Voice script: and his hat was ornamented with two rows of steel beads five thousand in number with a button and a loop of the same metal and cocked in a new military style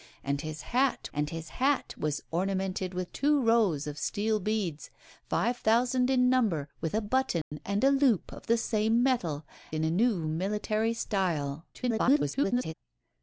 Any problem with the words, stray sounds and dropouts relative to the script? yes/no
yes